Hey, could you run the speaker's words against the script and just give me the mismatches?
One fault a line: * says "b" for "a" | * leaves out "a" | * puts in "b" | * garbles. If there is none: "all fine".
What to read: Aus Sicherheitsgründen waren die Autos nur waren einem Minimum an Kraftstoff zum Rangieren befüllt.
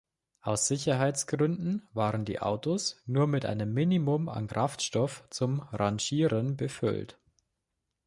* says "mit" for "waren"